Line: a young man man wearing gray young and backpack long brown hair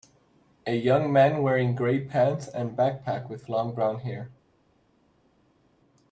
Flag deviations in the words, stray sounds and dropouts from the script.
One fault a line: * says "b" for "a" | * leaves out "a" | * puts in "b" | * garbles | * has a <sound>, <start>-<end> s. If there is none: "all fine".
* leaves out "man"
* says "pants" for "young"
* puts in "with"